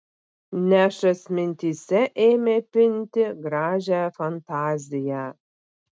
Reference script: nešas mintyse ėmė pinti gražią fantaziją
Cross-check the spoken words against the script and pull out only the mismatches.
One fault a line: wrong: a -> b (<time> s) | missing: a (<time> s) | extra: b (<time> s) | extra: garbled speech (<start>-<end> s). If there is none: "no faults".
no faults